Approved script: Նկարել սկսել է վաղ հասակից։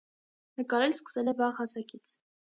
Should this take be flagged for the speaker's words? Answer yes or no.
no